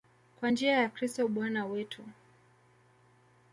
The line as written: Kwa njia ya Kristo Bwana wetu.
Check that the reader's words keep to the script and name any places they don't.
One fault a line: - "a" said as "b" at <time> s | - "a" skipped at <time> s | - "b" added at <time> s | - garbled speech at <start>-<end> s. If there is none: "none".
none